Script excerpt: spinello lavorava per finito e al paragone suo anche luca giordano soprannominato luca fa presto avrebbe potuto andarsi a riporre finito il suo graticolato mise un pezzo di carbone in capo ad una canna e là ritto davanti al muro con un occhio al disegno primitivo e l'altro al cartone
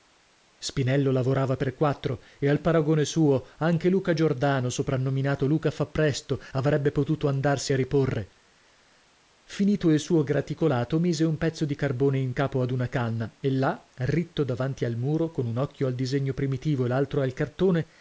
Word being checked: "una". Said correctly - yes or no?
yes